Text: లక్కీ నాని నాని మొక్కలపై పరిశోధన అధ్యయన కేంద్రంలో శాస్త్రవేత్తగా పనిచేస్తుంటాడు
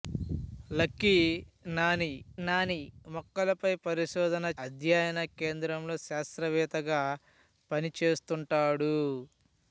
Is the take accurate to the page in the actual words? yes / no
yes